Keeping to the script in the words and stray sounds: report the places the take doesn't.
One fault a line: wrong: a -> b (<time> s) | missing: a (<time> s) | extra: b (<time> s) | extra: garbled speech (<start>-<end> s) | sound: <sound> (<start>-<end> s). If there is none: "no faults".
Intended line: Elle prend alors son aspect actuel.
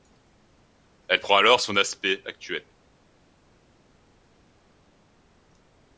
no faults